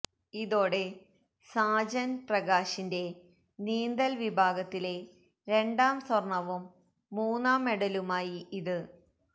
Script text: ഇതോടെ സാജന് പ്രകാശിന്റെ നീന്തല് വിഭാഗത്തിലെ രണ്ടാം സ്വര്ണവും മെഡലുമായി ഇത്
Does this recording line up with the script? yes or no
no